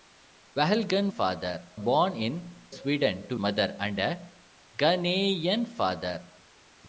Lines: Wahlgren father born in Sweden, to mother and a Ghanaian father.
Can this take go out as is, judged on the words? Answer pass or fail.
pass